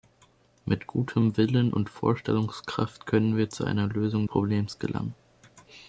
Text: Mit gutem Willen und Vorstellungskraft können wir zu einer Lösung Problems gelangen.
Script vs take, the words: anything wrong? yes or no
no